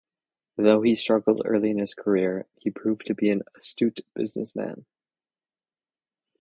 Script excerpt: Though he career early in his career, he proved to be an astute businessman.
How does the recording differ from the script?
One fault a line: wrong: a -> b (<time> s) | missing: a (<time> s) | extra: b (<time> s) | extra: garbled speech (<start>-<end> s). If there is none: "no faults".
wrong: career -> struggled (0.9 s)